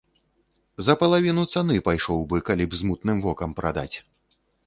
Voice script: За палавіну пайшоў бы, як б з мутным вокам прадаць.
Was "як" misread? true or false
true